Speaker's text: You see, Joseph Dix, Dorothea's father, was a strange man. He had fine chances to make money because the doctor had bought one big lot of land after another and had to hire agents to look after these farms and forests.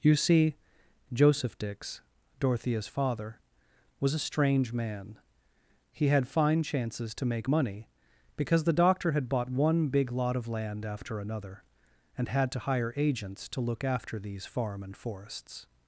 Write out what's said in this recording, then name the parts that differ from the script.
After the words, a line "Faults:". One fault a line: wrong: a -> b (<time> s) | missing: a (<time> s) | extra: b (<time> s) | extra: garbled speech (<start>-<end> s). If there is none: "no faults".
You see, Joseph Dix, Dorothea's father, was a strange man. He had fine chances to make money because the doctor had bought one big lot of land after another and had to hire agents to look after these farm and forests.
Faults:
wrong: farms -> farm (14.5 s)